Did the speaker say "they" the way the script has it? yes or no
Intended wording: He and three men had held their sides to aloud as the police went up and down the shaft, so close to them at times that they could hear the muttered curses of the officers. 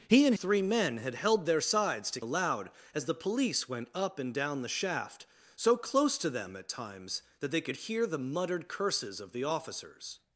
yes